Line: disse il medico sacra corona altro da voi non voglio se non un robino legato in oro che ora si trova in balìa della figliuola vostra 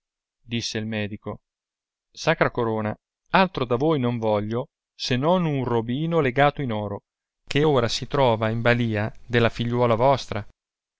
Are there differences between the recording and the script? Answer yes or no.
no